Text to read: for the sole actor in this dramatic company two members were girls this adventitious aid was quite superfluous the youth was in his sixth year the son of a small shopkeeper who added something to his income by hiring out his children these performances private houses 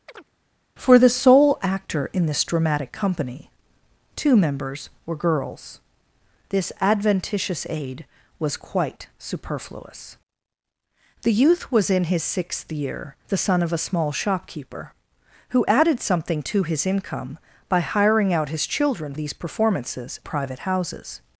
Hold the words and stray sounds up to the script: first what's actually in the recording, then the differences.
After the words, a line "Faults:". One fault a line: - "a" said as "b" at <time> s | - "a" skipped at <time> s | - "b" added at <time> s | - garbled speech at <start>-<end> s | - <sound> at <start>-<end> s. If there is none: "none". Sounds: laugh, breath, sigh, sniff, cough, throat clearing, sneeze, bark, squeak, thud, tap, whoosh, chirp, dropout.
for the sole actor in this dramatic company two members were girls this adventitious aid was quite superfluous the youth was in his sixth year the son of a small shopkeeper who added something to his income by hiring out his children these performances private houses
Faults:
- chirp at 0.1-0.3 s